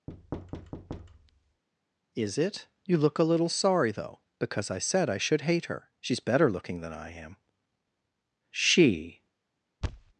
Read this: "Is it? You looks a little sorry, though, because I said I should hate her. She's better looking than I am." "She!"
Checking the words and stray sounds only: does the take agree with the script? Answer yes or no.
no